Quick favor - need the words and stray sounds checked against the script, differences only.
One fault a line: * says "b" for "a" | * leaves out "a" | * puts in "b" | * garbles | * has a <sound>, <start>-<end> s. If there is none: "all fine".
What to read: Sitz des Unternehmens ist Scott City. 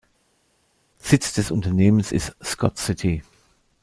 all fine